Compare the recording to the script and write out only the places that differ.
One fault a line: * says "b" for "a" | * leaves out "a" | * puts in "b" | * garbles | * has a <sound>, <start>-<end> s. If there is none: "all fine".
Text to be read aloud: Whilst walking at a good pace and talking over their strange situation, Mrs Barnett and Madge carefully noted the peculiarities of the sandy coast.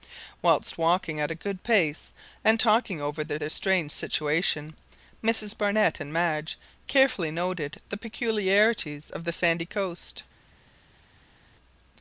* puts in "their"